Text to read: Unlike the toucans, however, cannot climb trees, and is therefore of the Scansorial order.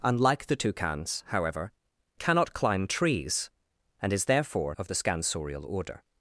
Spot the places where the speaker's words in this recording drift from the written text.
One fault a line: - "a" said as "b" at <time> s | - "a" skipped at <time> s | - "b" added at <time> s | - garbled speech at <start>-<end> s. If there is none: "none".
none